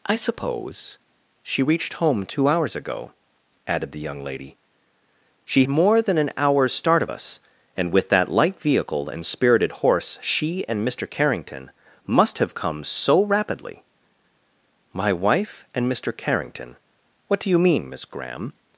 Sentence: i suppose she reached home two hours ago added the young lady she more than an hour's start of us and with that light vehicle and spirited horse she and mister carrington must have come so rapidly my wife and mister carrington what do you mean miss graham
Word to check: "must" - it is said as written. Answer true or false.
true